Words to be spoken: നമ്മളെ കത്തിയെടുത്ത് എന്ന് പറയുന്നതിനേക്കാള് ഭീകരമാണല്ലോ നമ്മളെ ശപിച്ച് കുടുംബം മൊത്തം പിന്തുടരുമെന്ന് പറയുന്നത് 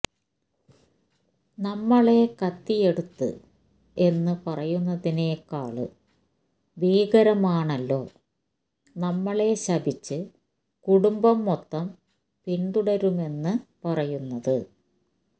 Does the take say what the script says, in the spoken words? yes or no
yes